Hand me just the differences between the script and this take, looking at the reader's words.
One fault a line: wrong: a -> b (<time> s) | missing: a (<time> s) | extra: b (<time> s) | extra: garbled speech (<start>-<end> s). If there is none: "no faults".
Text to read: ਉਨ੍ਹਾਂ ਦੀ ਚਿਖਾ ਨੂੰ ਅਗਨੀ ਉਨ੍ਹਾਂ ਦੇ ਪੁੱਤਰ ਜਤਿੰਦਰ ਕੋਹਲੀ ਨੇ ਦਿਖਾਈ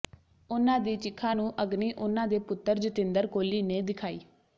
no faults